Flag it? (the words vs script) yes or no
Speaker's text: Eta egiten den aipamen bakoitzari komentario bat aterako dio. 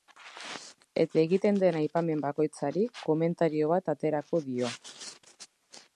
no